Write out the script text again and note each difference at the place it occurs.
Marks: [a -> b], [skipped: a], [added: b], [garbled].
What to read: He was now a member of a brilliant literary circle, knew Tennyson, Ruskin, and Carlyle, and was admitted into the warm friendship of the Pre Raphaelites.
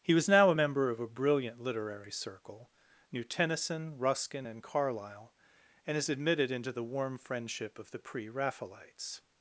He was now a member of a brilliant literary circle, knew Tennyson, Ruskin, and Carlyle, and [was -> is] admitted into the warm friendship of the Pre Raphaelites.